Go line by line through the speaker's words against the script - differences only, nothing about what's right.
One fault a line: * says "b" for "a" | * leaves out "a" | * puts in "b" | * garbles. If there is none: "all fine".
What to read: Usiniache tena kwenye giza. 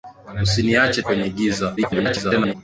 * leaves out "tena"
* garbles